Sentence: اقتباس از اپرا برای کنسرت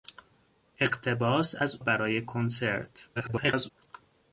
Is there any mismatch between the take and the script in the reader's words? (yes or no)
yes